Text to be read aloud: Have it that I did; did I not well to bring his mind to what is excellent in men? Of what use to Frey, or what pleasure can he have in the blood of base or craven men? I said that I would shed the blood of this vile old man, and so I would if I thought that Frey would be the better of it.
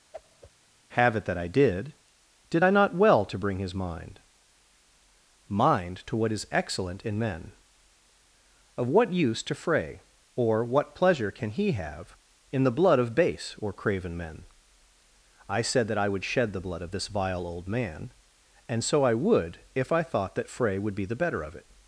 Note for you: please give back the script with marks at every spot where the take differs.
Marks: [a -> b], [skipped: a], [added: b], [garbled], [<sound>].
[whoosh] Have it that I did; did I not well to bring his mind [added: mind] to what is excellent in men? Of what use to Frey, or what pleasure can he have in the blood of base or craven men? I said that I would shed the blood of this vile old man, and so I would if I thought that Frey would be the better of it.